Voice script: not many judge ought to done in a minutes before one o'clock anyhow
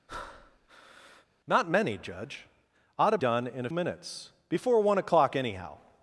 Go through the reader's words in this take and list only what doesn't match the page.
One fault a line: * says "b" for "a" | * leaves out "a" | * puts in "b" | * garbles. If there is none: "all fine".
all fine